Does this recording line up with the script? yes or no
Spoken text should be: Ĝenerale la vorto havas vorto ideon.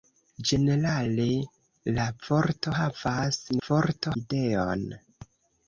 yes